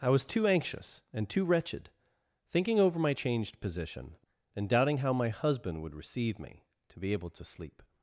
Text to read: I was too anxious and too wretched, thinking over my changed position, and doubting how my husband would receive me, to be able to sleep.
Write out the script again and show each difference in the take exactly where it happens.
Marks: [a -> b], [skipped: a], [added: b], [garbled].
I was too anxious and too wretched, thinking over my changed position, and doubting how my husband would receive me, to be able to sleep.